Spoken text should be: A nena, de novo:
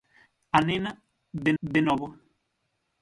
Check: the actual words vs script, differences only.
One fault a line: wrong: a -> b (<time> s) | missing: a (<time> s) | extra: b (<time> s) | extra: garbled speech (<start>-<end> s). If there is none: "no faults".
extra: de (1.6 s)